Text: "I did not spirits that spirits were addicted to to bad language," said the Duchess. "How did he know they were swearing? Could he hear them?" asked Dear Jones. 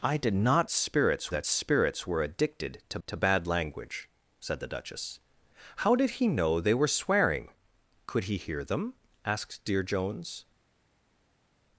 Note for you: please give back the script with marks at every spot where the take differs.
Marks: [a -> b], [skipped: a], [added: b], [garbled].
"I did not spirits that spirits were addicted to to bad language," said the Duchess. "How did he know they were swearing? Could he hear them?" asked Dear Jones.